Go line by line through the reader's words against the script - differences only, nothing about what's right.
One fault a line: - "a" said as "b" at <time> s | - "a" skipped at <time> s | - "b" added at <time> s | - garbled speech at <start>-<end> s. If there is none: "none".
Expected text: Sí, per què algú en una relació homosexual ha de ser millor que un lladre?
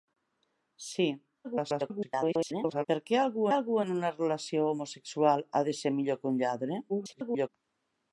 - garbled speech at 1.4-2.9 s
- "algú" added at 3.5 s
- garbled speech at 6.9-7.5 s